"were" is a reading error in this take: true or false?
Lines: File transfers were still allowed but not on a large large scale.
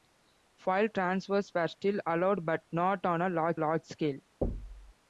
false